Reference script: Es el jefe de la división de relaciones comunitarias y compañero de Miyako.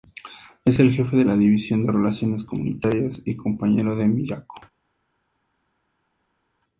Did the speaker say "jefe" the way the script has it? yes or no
yes